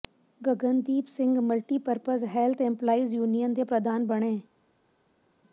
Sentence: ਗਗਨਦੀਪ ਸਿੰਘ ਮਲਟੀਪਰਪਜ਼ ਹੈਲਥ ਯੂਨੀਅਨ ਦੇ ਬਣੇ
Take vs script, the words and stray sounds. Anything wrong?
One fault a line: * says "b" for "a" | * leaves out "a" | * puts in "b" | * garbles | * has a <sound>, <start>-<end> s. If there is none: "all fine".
* puts in "ਇੰਪਲਾਈਜ਼"
* puts in "ਪ੍ਰਧਾਨ"